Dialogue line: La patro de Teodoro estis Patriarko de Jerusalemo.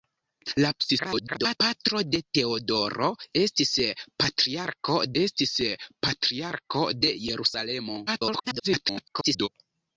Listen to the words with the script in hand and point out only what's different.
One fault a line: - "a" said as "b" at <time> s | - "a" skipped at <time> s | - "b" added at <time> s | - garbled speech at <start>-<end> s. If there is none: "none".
- garbled speech at 0.8-1.6 s
- "estis Patriarko" added at 5.2 s
- garbled speech at 8.1-9.5 s